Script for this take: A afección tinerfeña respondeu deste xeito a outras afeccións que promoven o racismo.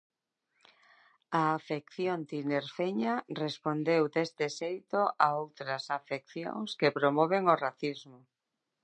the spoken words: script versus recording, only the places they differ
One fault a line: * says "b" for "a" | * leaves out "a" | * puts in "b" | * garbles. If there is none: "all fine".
all fine